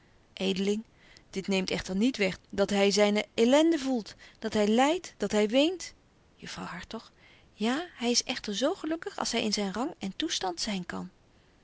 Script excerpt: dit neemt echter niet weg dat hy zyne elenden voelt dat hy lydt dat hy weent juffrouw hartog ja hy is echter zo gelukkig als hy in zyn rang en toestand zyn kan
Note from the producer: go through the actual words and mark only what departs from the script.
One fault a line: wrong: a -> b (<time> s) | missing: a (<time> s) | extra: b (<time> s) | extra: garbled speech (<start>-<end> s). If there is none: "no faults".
no faults